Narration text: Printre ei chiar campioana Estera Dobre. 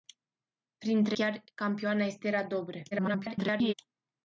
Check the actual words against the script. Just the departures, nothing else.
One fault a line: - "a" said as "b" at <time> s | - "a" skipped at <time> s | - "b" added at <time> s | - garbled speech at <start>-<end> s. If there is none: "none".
- "ei" skipped at 1.2 s
- garbled speech at 2.9-3.7 s